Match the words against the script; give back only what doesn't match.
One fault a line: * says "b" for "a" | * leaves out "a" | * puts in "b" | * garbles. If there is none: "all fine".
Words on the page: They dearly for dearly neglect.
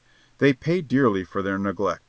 * puts in "paid"
* says "their" for "dearly"